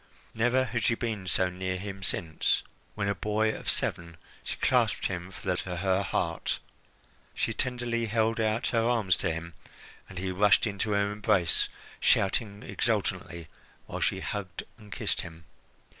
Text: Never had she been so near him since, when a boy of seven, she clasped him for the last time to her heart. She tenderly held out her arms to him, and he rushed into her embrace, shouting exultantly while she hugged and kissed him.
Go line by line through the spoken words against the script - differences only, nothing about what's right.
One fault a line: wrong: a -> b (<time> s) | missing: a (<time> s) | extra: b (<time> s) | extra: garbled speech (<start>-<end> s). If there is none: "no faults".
missing: last time (5.5 s)